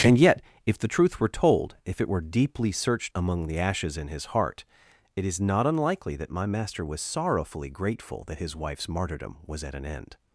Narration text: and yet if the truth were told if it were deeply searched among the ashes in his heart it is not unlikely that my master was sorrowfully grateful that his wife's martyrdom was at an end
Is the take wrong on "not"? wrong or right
right